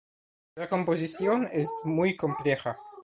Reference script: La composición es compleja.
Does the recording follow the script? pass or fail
fail